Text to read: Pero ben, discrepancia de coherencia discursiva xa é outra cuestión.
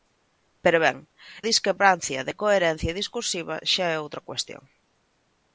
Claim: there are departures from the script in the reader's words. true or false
false